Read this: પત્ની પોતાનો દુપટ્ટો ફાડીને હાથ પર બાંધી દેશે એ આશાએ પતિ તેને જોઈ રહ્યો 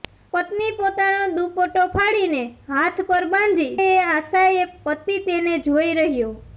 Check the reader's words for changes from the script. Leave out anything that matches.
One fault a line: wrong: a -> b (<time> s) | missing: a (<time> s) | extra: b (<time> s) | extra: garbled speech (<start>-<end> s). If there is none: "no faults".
missing: દેશે (3.8 s)